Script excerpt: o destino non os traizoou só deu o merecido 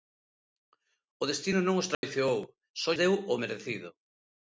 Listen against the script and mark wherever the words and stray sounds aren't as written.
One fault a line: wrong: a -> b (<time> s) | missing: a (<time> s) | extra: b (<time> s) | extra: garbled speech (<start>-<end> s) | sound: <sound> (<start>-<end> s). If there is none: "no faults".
sound: dropout (1.9-2.0 s)